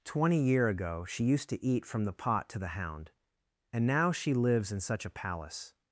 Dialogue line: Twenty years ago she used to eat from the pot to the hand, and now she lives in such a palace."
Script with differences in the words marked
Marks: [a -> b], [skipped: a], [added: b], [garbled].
Twenty [years -> year] ago she used to eat from the pot to the [hand, -> hound] and now she lives in such a palace."